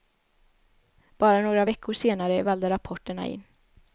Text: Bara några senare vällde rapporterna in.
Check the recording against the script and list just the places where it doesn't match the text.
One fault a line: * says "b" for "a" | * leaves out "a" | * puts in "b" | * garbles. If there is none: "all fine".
* puts in "veckor"